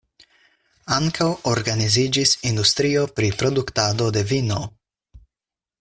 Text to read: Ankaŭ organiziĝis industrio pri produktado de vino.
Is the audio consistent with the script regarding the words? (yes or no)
yes